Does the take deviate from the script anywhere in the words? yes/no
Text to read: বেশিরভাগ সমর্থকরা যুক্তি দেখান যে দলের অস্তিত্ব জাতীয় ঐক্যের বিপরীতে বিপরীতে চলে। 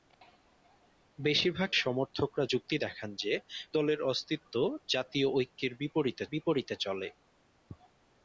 no